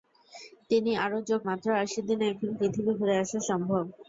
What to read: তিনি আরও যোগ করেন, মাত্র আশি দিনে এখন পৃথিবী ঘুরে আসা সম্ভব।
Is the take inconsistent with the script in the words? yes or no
yes